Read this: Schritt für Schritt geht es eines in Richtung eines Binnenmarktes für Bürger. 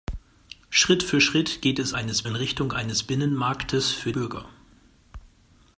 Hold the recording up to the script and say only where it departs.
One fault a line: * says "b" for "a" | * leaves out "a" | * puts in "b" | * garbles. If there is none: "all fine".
all fine